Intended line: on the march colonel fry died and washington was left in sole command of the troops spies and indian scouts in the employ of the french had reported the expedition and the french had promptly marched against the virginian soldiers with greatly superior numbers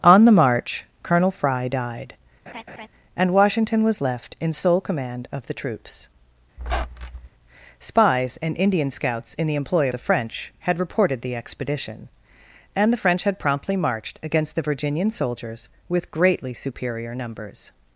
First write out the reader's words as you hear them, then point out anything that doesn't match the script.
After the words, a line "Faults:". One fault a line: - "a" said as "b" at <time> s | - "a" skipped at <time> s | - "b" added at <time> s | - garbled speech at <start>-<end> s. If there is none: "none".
on the march colonel fry died and washington was left in sole command of the troops spies and indian scouts in the employ the french had reported the expedition and the french had promptly marched against the virginian soldiers with greatly superior numbers
Faults:
- "of" skipped at 9.9 s